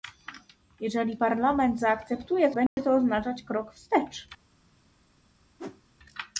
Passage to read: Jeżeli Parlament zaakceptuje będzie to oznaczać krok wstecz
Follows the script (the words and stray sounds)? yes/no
no